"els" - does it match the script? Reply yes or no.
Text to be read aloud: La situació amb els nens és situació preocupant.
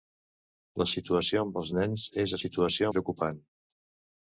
yes